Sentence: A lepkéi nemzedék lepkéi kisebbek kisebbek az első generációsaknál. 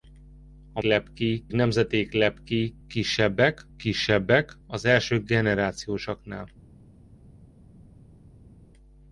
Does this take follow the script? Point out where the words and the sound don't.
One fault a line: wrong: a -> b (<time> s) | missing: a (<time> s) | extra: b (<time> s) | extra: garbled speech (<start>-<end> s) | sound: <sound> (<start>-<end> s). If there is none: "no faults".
no faults